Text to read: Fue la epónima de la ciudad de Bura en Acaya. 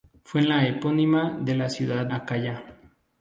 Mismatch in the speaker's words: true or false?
true